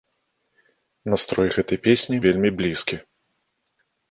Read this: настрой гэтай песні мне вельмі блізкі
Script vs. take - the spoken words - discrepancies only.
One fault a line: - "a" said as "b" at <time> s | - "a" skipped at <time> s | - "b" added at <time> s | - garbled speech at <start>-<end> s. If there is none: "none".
- "мне" skipped at 2.2 s